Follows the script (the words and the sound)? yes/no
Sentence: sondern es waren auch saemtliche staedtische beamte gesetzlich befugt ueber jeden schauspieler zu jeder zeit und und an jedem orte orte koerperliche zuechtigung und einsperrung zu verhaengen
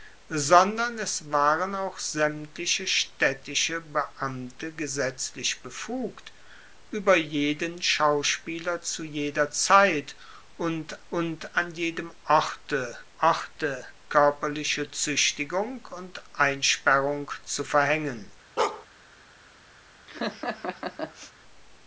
no